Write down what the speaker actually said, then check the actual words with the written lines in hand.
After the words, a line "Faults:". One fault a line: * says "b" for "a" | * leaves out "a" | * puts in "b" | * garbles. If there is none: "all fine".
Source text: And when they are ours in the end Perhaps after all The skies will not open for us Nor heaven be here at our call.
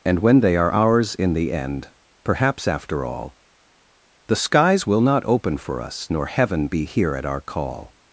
And when they are ours in the end Perhaps after all The skies will not open for us Nor heaven be here at our call.
Faults:
all fine